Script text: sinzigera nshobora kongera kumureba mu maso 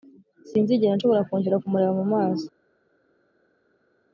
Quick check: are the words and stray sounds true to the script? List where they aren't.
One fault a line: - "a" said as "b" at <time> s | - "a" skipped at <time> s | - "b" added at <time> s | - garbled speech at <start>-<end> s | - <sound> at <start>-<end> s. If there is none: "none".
none